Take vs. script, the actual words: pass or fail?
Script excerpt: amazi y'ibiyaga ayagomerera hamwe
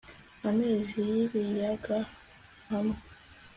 fail